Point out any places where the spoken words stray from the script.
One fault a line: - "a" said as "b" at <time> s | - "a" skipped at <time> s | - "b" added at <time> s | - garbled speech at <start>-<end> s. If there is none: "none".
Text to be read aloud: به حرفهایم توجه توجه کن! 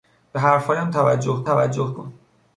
none